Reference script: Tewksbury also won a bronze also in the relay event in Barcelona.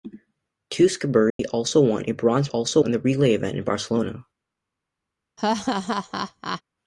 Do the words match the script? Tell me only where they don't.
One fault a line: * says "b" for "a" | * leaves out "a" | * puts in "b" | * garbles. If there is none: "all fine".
all fine